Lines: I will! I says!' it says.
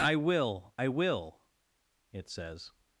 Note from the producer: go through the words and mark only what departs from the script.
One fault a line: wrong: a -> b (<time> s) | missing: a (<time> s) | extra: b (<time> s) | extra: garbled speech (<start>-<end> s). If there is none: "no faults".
wrong: says -> will (0.9 s)